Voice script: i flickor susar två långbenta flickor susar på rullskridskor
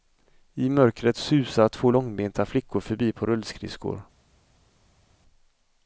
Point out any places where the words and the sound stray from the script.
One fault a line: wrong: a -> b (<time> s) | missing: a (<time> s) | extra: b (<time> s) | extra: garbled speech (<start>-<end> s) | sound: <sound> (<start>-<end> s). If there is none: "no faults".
wrong: flickor -> mörkret (0.7 s)
wrong: susar -> förbi (2.8 s)